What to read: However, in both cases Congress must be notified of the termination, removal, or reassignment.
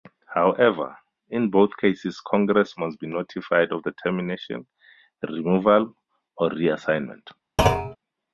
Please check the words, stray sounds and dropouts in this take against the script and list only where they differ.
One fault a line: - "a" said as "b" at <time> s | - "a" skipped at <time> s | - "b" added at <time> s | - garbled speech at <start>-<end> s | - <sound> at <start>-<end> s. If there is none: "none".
- thud at 7.6-8.0 s